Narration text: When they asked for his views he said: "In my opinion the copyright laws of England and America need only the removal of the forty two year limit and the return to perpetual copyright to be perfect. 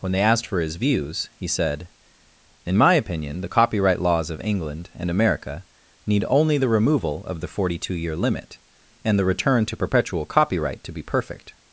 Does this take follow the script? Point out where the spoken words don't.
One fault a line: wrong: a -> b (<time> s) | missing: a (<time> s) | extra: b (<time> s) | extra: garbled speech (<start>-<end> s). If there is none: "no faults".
no faults